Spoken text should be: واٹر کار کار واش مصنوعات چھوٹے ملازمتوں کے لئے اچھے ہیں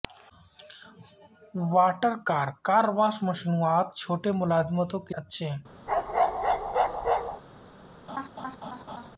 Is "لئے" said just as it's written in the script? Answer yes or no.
no